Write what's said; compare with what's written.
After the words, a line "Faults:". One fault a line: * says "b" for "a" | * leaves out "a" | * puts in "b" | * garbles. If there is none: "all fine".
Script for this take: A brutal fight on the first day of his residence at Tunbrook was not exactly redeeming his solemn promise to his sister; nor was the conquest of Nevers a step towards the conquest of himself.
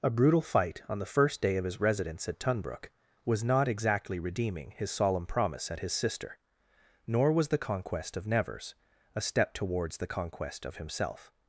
A brutal fight on the first day of his residence at Tunbrook was not exactly redeeming his solemn promise at his sister; nor was the conquest of Nevers a step towards the conquest of himself.
Faults:
* says "at" for "to"